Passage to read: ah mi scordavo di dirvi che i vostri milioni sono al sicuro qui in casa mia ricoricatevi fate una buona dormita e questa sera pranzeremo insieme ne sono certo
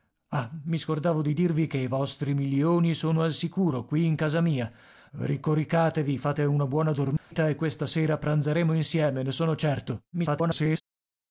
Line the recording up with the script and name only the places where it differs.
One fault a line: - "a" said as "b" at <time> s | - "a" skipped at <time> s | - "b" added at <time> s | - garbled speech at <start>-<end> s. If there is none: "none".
- garbled speech at 10.1-10.8 s